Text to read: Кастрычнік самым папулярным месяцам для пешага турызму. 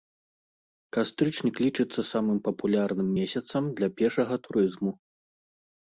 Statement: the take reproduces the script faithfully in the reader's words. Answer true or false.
false